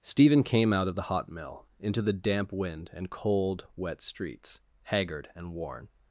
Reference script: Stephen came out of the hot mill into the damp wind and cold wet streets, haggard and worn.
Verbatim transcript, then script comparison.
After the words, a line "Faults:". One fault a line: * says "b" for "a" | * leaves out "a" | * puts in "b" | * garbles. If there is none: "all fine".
Stephen came out of the hot mill into the damp wind and cold wet streets, haggard and worn.
Faults:
all fine